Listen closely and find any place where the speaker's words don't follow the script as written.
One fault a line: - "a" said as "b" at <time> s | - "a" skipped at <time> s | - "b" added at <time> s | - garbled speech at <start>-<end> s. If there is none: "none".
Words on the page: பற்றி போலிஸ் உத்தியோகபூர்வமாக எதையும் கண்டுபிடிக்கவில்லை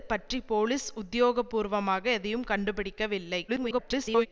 - garbled speech at 3.5-4.3 s